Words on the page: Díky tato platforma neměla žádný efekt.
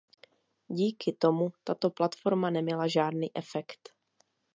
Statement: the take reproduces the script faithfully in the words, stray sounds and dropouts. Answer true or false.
false